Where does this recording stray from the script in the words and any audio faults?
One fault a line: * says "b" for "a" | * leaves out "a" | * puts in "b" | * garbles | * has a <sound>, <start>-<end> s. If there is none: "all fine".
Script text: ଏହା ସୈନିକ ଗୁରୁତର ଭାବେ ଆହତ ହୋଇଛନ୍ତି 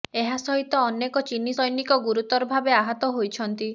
* puts in "ସହିତ ଅନେକ ଚୀନୀ"